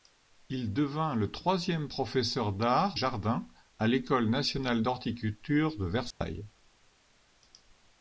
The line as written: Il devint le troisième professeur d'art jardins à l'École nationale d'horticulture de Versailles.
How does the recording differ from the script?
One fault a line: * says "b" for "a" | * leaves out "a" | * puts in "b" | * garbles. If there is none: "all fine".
all fine